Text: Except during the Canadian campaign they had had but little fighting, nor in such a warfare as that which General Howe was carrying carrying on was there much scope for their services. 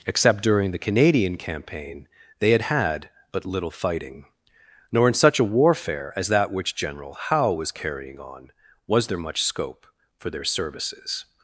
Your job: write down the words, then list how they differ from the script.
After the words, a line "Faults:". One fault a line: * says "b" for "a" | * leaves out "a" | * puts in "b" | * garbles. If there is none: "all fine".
Except during the Canadian campaign they had had but little fighting, nor in such a warfare as that which General Howe was carrying on was there much scope for their services.
Faults:
* leaves out "carrying"